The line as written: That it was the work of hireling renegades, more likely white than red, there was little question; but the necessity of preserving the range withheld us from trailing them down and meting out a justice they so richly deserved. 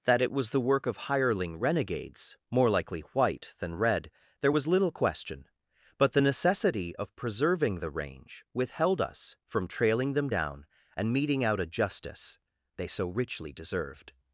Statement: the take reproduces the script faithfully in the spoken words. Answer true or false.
true